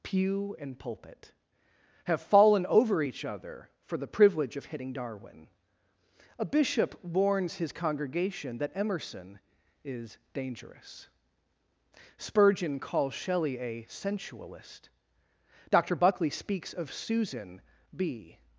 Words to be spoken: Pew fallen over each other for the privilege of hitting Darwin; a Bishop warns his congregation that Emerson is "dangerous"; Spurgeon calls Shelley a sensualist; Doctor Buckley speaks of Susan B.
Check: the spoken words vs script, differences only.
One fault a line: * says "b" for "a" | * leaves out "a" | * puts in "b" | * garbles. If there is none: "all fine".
* puts in "and pulpit have"